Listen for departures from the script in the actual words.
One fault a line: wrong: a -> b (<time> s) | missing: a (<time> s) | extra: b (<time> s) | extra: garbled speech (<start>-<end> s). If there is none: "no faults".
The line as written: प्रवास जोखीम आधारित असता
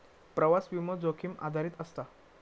extra: विमो (0.7 s)